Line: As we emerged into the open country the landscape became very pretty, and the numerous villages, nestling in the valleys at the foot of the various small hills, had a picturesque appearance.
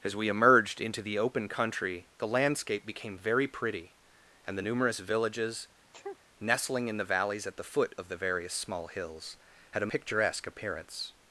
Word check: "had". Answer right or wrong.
right